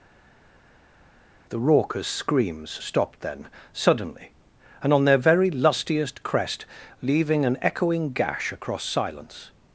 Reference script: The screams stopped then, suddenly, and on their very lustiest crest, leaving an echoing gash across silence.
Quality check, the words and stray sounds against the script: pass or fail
fail